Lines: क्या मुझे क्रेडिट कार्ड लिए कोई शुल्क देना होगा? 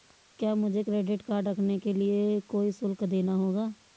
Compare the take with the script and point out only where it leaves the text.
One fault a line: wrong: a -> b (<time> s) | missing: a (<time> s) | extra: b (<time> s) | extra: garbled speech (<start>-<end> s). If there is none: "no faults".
extra: रखने के (1.5 s)